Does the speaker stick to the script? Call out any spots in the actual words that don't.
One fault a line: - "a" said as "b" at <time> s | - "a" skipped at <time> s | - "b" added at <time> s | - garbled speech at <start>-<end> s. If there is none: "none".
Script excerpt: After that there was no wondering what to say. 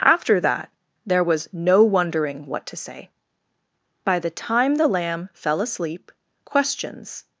- "By the time the lamb fell asleep questions" added at 4.0 s